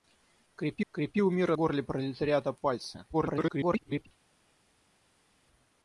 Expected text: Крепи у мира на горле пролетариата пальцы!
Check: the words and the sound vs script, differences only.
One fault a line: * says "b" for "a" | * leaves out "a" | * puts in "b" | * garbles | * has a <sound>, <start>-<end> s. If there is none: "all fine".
* puts in "крепи"
* leaves out "на"
* garbles